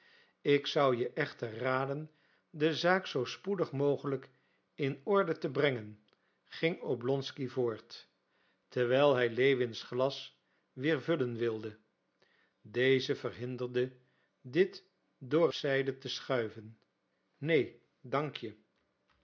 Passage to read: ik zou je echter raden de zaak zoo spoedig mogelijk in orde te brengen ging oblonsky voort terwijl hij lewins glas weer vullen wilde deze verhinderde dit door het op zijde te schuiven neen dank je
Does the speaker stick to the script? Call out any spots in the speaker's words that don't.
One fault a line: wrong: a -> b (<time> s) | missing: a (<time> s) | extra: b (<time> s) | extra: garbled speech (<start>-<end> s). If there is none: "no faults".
missing: het op (15.5 s)